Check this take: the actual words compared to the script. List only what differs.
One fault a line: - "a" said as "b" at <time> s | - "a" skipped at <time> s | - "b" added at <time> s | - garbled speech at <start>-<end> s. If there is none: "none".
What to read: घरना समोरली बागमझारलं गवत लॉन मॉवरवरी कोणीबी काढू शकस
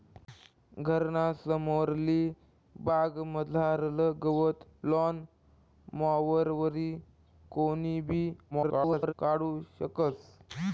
- garbled speech at 8.5-9.1 s